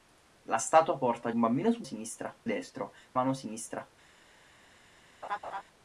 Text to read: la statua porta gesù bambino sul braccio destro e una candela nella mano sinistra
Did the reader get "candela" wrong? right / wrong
wrong